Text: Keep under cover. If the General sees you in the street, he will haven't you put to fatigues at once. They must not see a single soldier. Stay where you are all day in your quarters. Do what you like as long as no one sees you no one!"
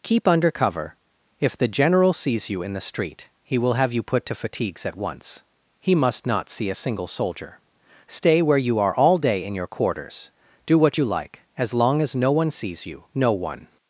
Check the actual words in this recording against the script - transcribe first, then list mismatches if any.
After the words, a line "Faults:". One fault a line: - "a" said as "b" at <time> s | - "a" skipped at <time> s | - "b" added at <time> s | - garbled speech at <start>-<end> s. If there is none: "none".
Keep under cover. If the General sees you in the street, he will have you put to fatigues at once. He must not see a single soldier. Stay where you are all day in your quarters. Do what you like as long as no one sees you no one!"
Faults:
- "haven't" said as "have" at 3.7 s
- "They" said as "He" at 5.8 s